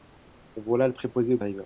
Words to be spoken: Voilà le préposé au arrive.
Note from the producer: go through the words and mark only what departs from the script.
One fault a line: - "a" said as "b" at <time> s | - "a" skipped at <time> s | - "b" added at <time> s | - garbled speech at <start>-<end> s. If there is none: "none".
none